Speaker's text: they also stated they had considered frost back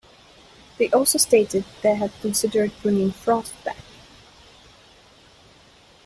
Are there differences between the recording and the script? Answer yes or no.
yes